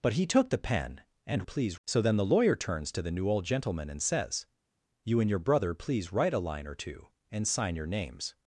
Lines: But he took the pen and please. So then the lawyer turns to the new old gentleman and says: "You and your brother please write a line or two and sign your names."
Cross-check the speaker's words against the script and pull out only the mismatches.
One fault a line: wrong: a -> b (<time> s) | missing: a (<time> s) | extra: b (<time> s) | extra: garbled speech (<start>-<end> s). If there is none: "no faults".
no faults